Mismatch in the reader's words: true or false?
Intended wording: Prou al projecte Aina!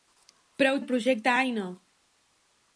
false